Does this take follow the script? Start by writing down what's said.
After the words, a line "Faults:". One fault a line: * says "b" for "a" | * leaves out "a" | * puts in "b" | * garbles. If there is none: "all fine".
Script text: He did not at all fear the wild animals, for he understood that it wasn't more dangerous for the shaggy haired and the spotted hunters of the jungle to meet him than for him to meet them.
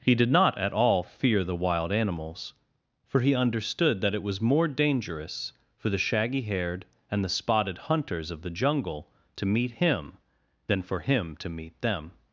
He did not at all fear the wild animals, for he understood that it was more dangerous for the shaggy haired and the spotted hunters of the jungle to meet him than for him to meet them.
Faults:
* says "was" for "wasn't"